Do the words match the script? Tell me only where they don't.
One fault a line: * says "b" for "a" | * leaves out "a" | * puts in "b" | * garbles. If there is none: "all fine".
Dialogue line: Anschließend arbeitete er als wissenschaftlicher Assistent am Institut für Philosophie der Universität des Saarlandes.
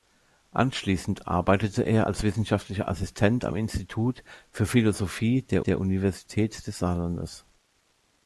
* puts in "der"